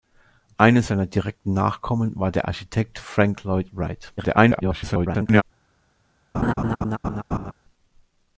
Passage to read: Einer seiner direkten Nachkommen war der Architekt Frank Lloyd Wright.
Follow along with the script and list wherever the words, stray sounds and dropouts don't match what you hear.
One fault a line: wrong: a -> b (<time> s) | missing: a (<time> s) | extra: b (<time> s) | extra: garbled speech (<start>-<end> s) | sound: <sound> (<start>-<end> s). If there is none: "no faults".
extra: garbled speech (4.2-5.4 s)
sound: laugh (6.3-7.5 s)